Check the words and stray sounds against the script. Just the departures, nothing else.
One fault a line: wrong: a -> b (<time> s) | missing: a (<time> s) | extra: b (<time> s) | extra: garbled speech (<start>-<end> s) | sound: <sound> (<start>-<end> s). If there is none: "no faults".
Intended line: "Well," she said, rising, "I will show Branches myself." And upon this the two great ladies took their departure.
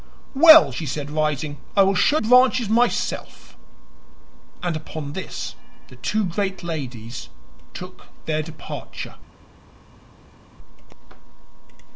no faults